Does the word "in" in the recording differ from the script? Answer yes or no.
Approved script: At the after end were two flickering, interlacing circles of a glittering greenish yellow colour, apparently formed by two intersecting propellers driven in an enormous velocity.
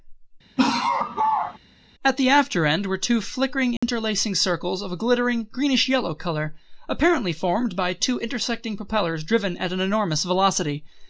yes